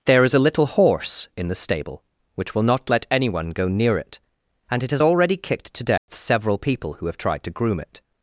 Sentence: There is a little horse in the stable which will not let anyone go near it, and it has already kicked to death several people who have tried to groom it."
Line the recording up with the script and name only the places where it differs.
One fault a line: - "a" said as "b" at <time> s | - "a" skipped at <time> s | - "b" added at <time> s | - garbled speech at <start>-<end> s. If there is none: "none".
none